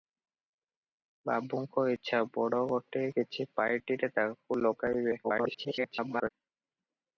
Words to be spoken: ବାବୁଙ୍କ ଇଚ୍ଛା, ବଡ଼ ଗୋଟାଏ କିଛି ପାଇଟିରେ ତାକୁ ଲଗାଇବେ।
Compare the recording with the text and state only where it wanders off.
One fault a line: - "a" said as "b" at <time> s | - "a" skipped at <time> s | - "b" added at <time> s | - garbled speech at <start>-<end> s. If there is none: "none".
- garbled speech at 5.2-6.3 s